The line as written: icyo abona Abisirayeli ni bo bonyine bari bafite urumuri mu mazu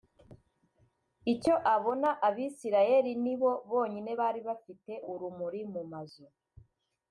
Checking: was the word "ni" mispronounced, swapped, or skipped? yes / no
no